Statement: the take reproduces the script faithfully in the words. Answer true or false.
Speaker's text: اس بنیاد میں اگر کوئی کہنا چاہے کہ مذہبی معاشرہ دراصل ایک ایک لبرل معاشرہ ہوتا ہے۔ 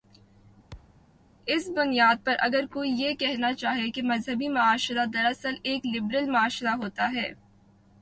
false